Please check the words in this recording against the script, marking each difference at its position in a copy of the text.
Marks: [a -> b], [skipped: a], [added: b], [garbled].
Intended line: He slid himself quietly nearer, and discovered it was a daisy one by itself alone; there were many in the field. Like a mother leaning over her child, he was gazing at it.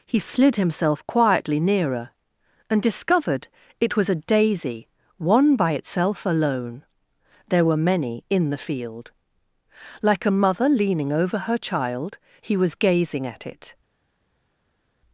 He slid himself quietly nearer, and discovered it was a daisy one by itself alone; there were many in the field. Like a mother leaning over her child, he was gazing at it.